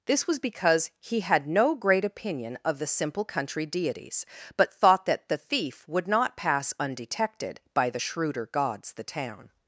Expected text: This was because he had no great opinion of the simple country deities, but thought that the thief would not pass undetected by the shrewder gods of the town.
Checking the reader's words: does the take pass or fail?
fail